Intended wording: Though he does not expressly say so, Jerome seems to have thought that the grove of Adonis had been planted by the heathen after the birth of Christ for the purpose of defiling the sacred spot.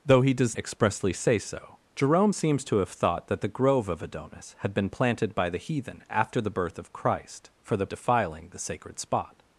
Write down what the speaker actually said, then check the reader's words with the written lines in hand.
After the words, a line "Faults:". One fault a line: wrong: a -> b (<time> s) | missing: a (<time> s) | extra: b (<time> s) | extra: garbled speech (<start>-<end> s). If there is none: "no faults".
Though he does expressly say so, Jerome seems to have thought that the grove of Adonis had been planted by the heathen after the birth of Christ for the defiling the sacred spot.
Faults:
missing: not (0.6 s)
missing: purpose of (7.9 s)